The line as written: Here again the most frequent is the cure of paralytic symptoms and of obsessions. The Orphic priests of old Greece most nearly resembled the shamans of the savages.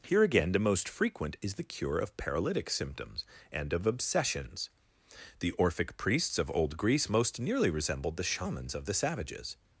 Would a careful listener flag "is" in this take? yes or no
no